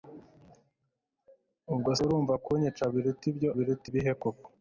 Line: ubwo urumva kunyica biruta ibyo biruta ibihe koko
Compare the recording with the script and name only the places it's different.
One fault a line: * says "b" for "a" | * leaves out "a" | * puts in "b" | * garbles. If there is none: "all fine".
all fine